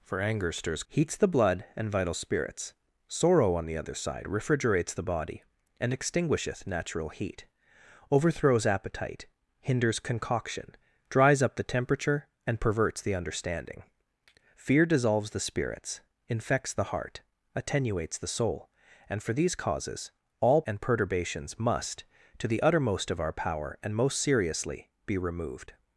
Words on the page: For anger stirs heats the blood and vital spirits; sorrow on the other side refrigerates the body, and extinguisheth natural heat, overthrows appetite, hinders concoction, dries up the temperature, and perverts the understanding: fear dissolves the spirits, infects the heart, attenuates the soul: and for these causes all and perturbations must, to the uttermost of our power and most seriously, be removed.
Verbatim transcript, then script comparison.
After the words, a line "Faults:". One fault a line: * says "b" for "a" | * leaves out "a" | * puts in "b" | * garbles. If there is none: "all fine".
For anger stirs heats the blood and vital spirits; sorrow on the other side refrigerates the body, and extinguisheth natural heat, overthrows appetite, hinders concoction, dries up the temperature, and perverts the understanding: fear dissolves the spirits, infects the heart, attenuates the soul: and for these causes all and perturbations must, to the uttermost of our power and most seriously, be removed.
Faults:
all fine